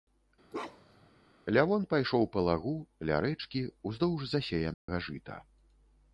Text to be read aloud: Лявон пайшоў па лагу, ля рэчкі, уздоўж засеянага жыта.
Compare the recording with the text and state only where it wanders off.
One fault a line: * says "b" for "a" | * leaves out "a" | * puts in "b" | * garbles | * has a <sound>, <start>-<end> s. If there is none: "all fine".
* has a bark, 0.5-1.1 s
* has a dropout, 4.7-4.9 s